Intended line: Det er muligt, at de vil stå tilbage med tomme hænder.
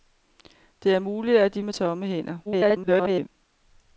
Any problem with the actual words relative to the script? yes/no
yes